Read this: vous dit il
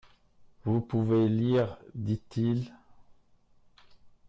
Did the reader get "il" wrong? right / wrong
right